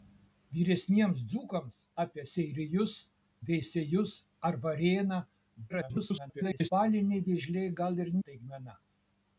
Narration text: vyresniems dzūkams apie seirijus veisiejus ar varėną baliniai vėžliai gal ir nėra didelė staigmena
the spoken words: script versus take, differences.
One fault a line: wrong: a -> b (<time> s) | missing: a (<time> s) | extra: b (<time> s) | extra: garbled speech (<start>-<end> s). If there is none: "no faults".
extra: garbled speech (5.7-6.7 s)
missing: nėra didelė (8.1 s)